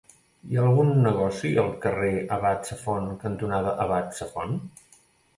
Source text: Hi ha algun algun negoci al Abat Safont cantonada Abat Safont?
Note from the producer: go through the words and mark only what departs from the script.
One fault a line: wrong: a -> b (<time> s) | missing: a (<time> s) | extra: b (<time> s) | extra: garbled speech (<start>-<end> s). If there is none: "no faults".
missing: algun (0.9 s)
extra: carrer (1.8 s)